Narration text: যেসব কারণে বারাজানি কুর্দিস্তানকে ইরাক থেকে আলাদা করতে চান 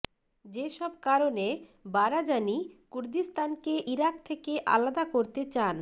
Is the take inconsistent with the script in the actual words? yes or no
no